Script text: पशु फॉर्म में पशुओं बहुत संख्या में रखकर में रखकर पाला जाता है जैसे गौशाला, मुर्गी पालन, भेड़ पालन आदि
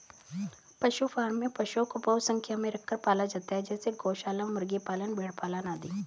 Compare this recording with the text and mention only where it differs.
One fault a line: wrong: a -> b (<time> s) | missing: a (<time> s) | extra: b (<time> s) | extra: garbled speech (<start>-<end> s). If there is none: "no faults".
extra: को (1.9 s)
missing: में रखकर (3.0 s)